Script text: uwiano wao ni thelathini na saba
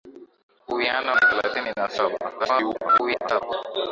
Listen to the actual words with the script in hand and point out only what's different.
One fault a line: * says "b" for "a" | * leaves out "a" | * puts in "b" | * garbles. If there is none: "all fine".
* leaves out "wao"
* garbles